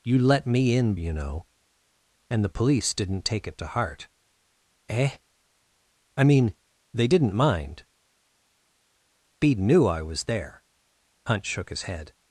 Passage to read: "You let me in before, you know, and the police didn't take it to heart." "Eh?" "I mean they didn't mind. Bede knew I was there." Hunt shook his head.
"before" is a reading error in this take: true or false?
true